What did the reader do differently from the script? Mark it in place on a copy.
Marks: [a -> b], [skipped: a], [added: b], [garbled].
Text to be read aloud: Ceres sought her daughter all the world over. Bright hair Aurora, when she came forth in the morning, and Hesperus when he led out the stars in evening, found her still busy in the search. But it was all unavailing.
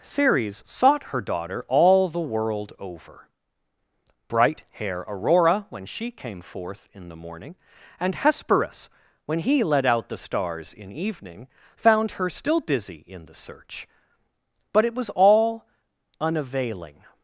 Ceres sought her daughter all the world over. Bright hair Aurora, when she came forth in the morning, and Hesperus when he led out the stars in evening, found her still busy in the search. But it was all unavailing.